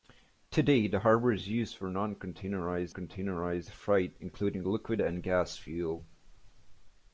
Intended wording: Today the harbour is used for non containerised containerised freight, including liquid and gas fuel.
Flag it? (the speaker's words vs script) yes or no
no